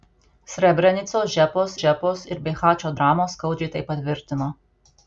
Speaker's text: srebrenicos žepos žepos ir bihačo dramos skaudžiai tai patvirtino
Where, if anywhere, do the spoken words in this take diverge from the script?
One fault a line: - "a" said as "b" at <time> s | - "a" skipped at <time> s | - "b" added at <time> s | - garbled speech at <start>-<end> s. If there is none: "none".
none